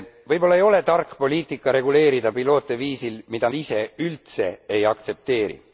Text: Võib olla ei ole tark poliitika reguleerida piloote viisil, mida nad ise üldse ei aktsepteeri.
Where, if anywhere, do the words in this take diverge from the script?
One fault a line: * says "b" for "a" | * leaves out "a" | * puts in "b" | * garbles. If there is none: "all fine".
* leaves out "nad"